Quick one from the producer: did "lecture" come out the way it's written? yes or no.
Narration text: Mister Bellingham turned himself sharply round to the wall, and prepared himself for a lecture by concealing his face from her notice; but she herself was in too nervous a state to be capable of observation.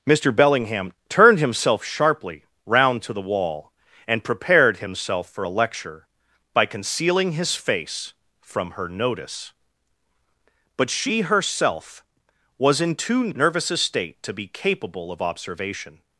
yes